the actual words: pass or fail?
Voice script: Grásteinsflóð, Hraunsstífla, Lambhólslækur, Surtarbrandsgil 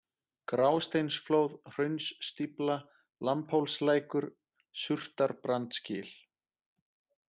pass